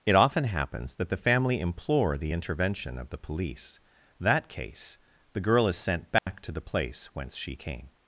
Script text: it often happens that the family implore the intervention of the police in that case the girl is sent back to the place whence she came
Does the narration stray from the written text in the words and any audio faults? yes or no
yes